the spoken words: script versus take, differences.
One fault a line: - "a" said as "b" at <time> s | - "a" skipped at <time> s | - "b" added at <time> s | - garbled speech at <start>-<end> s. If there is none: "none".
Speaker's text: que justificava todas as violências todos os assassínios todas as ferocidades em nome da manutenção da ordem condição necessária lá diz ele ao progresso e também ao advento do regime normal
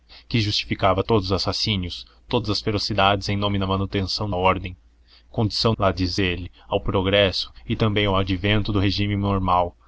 - "todas as violências" skipped at 1.0 s
- "da" skipped at 4.3 s
- "necessária" skipped at 5.7 s